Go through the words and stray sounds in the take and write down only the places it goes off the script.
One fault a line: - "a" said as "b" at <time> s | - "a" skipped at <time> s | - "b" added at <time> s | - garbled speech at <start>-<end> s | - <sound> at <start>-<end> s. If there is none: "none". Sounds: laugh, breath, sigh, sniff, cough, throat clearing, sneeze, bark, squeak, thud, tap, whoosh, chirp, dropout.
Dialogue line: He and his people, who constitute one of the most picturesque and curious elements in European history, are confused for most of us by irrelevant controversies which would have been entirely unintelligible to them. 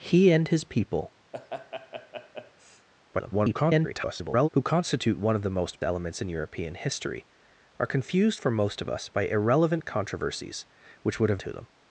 - laugh at 1.3-2.9 s
- garbled speech at 3.1-4.5 s
- "picturesque and curious" skipped at 5.8 s
- "been entirely unintelligible" skipped at 11.4 s